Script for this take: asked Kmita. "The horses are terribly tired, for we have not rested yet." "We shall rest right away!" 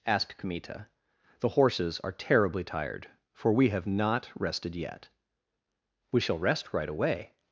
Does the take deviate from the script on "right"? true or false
false